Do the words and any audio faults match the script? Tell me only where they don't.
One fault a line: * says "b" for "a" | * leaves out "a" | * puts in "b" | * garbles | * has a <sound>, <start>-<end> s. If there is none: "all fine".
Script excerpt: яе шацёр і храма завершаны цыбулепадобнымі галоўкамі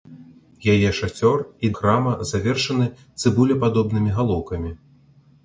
all fine